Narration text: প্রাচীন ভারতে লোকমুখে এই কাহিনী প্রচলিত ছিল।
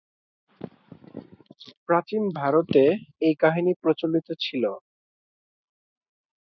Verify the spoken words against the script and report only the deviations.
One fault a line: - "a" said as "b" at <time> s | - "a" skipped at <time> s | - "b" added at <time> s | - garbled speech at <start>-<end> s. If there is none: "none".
- "লোকমুখে" skipped at 2.8 s